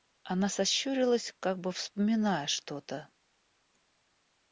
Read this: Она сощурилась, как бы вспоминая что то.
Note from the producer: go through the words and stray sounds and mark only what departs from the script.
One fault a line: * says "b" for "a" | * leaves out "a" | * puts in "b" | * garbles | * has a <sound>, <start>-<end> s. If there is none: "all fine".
all fine